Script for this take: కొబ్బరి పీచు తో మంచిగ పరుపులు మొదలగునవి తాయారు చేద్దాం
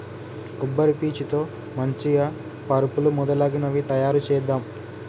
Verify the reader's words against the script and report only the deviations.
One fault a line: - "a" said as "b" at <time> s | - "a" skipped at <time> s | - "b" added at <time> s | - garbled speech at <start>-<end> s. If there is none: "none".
none